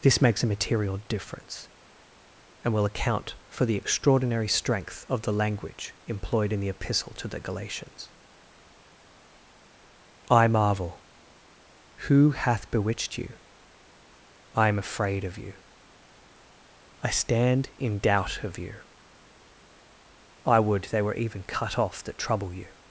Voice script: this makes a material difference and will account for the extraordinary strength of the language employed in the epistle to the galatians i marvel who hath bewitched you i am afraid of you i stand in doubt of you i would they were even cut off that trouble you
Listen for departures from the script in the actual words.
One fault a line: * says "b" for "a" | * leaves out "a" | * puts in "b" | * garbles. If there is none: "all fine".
all fine